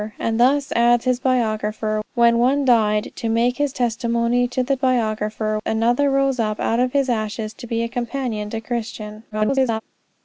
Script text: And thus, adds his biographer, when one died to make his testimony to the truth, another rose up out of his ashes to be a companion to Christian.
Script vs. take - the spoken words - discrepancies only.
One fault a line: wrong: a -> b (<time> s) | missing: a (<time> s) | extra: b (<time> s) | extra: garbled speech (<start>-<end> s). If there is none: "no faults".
wrong: truth -> biographer (4.8 s)
extra: garbled speech (9.3-9.8 s)